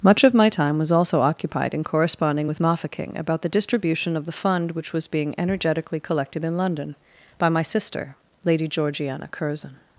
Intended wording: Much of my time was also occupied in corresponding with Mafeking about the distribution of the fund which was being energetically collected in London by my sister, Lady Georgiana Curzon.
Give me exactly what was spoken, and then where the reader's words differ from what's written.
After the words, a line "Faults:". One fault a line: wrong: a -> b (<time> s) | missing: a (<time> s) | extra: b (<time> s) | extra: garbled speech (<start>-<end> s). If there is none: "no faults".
Much of my time was also occupied in corresponding with Mafeking about the distribution of the fund which was being energetically collected in London by my sister, Lady Georgiana Curzon.
Faults:
no faults